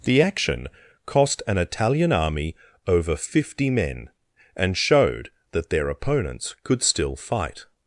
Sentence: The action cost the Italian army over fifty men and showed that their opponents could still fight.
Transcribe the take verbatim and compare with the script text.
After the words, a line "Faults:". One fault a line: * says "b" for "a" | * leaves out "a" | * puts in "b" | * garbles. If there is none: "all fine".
The action cost an Italian army over fifty men and showed that their opponents could still fight.
Faults:
* says "an" for "the"